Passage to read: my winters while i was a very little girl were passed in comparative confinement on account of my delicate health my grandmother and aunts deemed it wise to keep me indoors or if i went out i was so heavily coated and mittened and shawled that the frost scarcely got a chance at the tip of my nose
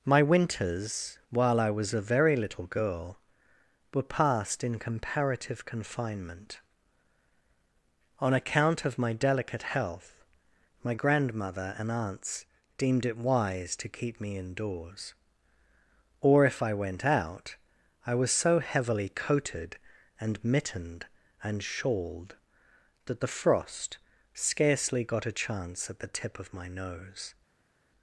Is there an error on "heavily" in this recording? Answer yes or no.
no